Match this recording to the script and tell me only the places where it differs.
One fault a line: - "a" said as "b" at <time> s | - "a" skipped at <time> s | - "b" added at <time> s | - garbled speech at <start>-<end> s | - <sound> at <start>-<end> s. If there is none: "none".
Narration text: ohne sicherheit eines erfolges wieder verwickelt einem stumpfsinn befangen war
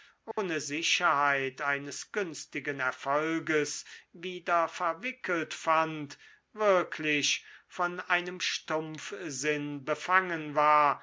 - dropout at 0.3-0.4 s
- "günstigen" added at 2.1 s
- "fand wirklich von" added at 5.5 s